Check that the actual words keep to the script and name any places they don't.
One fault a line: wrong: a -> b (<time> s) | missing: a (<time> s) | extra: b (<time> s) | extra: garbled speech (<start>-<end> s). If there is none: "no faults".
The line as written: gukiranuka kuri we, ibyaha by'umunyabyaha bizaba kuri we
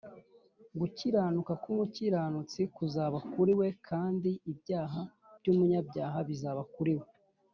extra: k'umukiranutsi kuzaba (1.6 s)
extra: kandi (3.9 s)